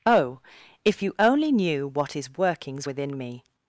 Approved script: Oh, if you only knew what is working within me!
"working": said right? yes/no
no